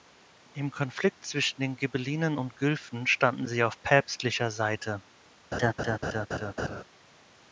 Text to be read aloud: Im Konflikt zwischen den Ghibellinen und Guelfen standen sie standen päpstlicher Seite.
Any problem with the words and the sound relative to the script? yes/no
yes